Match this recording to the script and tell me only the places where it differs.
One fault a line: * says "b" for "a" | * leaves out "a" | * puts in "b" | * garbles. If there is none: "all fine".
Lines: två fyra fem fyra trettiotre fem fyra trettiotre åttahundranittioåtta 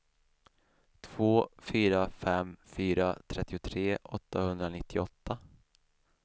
* leaves out "fem fyra trettiotre"